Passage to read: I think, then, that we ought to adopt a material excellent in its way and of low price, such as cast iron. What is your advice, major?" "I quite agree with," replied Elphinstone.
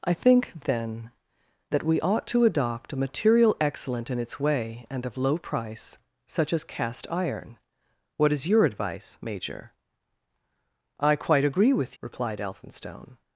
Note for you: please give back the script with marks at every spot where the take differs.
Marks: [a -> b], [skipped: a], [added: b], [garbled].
I think, then, that we ought to adopt a material excellent in its way and of low price, such as cast iron. What is your advice, major?" "I quite agree with," replied Elphinstone.